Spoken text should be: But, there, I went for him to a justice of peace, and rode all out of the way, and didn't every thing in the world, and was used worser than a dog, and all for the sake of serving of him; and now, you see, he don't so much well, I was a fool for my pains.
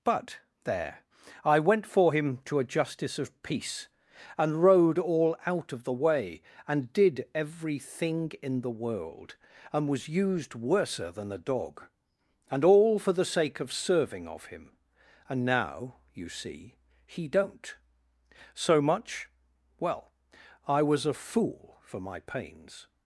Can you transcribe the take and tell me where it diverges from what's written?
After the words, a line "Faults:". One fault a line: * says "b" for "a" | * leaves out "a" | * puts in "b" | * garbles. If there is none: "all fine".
But, there, I went for him to a justice of peace, and rode all out of the way, and did every thing in the world, and was used worser than a dog, and all for the sake of serving of him; and now, you see, he don't so much well, I was a fool for my pains.
Faults:
* says "did" for "didn't"